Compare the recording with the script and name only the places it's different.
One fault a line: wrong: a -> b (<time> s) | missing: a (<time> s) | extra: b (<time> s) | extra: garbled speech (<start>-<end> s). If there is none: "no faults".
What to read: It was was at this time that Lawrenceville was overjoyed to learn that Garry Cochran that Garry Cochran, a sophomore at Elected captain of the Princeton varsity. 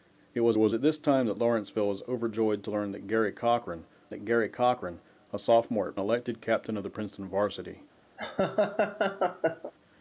no faults